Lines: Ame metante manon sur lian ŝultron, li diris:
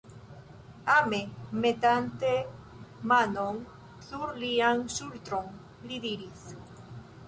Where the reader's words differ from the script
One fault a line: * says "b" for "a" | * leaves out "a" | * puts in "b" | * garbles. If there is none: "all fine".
all fine